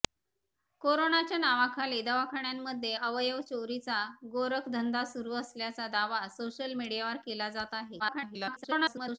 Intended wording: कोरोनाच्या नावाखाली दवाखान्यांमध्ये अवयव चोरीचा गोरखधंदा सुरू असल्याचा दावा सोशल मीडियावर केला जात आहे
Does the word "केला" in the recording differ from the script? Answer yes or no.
no